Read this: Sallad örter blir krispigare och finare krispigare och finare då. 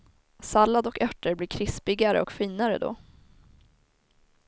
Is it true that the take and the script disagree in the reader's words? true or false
true